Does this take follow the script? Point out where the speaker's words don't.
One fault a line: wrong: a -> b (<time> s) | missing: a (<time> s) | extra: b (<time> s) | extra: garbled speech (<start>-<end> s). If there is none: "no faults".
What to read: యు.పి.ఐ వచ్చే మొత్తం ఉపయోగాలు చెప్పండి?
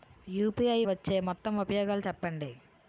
no faults